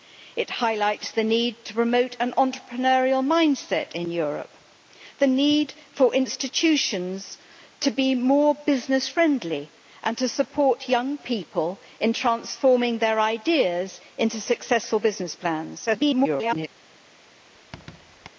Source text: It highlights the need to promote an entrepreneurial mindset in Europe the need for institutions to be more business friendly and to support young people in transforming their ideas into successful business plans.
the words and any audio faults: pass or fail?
fail